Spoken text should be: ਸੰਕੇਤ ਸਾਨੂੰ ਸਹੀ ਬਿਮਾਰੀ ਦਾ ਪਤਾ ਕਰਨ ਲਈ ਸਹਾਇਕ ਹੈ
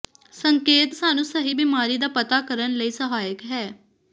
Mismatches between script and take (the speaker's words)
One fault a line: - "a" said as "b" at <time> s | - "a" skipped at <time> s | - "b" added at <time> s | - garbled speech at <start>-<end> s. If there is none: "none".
none